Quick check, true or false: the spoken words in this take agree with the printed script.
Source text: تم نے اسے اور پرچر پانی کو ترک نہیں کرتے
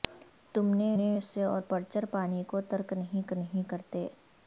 false